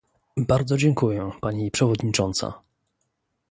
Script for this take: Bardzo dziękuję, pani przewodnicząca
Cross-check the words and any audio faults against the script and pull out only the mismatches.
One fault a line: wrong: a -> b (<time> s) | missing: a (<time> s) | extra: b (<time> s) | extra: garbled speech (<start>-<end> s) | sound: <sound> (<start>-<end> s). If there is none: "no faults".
no faults